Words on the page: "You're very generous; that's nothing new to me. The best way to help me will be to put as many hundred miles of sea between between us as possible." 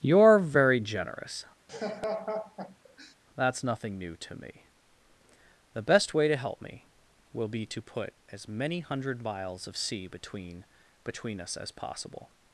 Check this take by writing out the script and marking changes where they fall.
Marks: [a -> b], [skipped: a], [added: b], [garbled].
"You're very generous; that's nothing new to me. The best way to help me will be to put as many hundred miles of sea between between us as possible."